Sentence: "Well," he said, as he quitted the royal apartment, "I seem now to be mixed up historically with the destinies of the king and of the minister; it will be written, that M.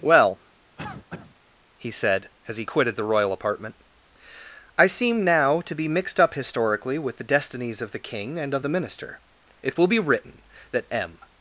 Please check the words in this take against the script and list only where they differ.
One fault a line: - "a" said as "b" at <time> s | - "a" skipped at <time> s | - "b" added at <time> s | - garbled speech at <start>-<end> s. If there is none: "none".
none